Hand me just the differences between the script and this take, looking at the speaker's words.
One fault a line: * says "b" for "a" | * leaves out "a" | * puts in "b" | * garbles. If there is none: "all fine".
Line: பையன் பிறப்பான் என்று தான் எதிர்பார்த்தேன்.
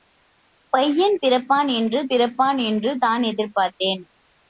* puts in "பிறப்பான் என்று"